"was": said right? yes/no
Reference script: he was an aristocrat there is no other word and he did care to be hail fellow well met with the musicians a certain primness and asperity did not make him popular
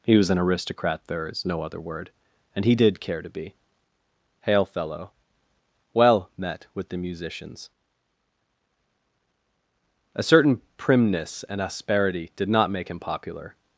yes